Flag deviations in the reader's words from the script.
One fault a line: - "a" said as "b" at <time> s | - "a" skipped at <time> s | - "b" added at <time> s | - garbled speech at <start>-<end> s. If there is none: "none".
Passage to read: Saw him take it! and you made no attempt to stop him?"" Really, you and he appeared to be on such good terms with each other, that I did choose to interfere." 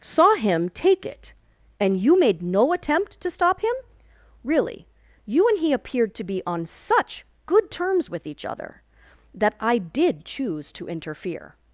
none